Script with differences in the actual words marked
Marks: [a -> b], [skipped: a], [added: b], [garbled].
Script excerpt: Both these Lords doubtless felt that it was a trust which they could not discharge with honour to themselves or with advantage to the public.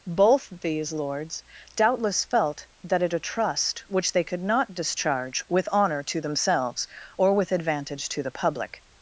Both these Lords doubtless felt that it [skipped: was] a trust which they could not discharge with honour to themselves or with advantage to the public.